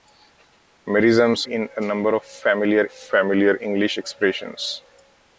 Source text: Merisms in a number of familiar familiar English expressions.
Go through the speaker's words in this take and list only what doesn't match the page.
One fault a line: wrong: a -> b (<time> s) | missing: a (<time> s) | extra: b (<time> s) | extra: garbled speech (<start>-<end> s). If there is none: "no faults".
no faults